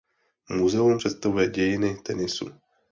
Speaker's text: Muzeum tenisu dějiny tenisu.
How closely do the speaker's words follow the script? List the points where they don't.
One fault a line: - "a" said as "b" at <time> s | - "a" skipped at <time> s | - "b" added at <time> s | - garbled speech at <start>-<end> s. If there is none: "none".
- "tenisu" said as "představuje" at 0.9 s